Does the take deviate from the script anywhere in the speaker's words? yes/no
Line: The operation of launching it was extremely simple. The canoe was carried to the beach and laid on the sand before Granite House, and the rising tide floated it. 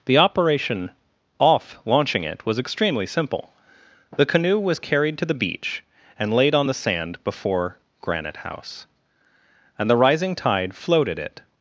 yes